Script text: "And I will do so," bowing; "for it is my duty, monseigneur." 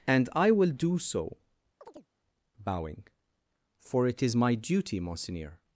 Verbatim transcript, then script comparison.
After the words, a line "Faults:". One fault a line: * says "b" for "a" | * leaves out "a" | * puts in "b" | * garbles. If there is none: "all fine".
"And I will do so," bowing; "for it is my duty, monseigneur."
Faults:
all fine